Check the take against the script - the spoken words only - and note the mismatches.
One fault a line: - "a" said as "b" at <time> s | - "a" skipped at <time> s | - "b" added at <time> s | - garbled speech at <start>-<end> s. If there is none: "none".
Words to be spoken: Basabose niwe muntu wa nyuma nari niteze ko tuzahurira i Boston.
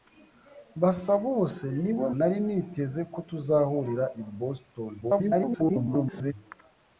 - "muntu wa nyuma" skipped at 2.1 s
- garbled speech at 5.0-6.3 s